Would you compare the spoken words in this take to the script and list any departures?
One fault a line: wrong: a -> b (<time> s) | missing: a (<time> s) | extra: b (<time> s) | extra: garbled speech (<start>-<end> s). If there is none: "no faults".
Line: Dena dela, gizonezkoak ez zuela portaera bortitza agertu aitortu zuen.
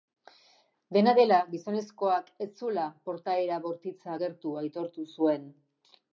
no faults